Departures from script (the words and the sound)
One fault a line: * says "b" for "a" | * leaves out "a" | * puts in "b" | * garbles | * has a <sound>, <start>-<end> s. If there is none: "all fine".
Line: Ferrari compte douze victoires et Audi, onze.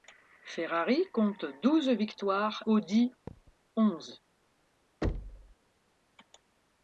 * leaves out "et"
* has a thud, 3.3-3.6 s
* has a thud, 5.0-5.5 s